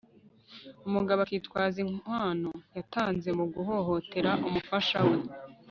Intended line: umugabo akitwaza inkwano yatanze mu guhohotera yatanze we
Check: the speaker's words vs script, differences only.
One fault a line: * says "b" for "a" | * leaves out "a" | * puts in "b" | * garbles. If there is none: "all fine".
* says "umufasha" for "yatanze"